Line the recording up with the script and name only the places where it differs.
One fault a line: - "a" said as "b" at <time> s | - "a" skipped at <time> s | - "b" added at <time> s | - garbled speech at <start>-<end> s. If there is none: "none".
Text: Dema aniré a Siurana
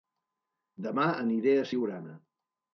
none